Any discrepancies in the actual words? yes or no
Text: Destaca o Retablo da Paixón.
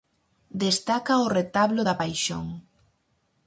no